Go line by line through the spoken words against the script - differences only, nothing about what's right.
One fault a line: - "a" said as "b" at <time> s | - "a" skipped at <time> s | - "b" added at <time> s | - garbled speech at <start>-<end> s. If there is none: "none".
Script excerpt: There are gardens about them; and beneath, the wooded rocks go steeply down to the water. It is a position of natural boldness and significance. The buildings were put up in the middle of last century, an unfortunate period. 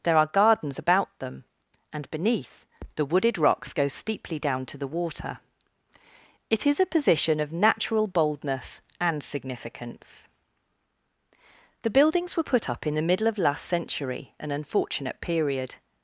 none